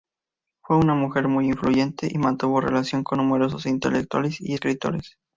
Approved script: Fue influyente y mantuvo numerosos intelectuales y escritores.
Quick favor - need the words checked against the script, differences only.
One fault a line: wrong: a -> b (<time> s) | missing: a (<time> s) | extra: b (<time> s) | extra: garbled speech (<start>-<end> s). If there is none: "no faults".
extra: una mujer muy (0.8 s)
extra: relación con (2.6 s)